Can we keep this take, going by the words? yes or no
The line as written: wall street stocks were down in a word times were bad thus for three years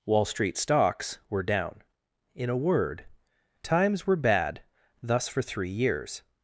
yes